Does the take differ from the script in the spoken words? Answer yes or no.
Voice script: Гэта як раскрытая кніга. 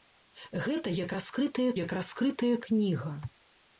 yes